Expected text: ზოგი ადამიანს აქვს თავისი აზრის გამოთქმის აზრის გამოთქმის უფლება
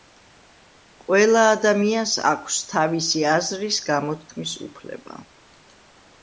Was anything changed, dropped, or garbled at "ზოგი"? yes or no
yes